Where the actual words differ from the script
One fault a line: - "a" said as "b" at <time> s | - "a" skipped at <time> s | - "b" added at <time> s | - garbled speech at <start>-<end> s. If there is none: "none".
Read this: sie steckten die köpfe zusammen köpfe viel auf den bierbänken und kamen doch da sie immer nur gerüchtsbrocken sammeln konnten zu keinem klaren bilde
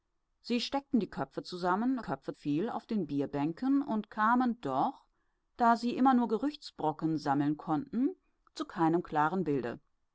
none